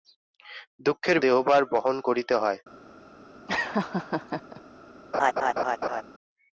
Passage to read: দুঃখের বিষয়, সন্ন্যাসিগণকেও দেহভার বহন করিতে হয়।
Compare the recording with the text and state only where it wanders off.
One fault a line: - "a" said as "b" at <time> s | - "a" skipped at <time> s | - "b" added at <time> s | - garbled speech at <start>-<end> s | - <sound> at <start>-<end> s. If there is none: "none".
- "বিষয় সন্ন্যাসিগণকেও" skipped at 1.2 s
- laugh at 3.5-4.6 s
- laugh at 5.1-6.0 s